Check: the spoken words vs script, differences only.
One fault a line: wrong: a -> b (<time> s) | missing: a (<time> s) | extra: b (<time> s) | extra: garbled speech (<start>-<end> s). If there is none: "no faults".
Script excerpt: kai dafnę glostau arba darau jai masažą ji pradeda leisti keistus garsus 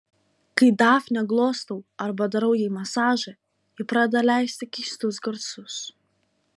no faults